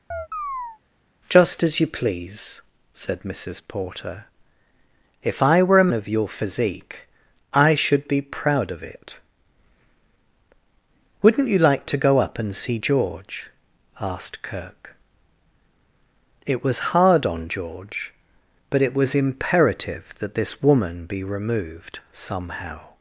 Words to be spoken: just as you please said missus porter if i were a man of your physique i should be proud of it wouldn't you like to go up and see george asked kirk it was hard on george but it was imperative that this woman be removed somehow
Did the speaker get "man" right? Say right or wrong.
wrong